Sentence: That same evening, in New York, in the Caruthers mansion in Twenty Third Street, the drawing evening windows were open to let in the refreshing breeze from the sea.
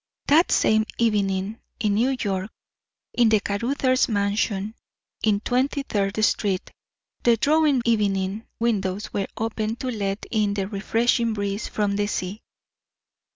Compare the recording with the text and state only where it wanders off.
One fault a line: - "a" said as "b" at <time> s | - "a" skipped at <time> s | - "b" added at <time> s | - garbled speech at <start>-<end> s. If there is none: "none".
none